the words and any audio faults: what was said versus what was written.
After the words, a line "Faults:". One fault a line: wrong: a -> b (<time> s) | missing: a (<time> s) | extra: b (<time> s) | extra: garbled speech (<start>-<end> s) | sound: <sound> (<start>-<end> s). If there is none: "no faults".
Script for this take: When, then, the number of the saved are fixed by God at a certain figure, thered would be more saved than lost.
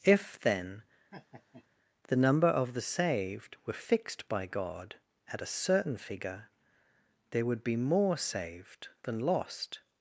If, then, the number of the saved were fixed by God at a certain figure, there would be more saved than lost.
Faults:
wrong: When -> If (0.0 s)
sound: laugh (1.1-1.7 s)
wrong: are -> were (3.7 s)
wrong: thered -> there (7.3 s)